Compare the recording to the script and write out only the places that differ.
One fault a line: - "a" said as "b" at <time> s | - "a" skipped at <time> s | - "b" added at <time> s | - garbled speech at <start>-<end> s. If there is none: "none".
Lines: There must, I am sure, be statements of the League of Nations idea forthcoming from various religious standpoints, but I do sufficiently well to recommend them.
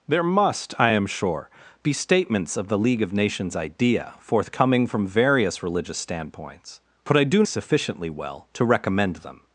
none